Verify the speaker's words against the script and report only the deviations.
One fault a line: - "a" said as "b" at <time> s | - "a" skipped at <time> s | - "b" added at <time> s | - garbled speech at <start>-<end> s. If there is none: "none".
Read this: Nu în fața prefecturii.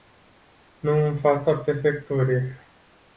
none